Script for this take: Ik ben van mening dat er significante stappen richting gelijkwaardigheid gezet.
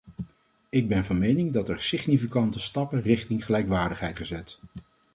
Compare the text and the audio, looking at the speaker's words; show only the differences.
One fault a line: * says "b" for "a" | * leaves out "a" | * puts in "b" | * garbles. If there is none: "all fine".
all fine